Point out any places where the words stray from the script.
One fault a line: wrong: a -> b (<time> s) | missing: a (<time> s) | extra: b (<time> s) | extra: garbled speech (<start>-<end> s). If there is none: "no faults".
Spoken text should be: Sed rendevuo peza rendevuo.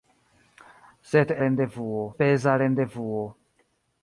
no faults